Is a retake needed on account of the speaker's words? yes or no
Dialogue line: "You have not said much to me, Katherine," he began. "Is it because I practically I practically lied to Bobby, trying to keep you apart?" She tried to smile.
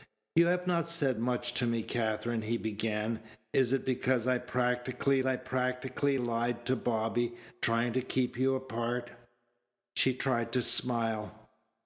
no